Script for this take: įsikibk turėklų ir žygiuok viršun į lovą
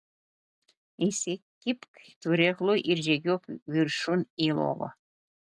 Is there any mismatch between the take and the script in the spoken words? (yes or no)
no